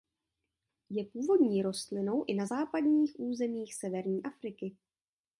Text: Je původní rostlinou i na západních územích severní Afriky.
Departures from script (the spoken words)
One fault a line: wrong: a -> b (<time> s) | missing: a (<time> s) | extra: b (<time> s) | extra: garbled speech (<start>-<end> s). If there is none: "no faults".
no faults